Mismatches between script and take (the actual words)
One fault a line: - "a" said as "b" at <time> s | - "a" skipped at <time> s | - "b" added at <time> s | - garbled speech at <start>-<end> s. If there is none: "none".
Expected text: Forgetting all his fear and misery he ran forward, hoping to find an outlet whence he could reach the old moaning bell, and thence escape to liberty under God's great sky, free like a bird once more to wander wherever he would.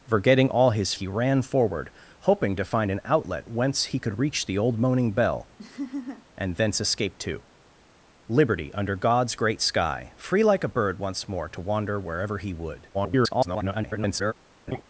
- "fear and misery" skipped at 0.9 s
- garbled speech at 12.9-14.3 s